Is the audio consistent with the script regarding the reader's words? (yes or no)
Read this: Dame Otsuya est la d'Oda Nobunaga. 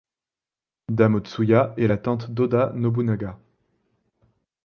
no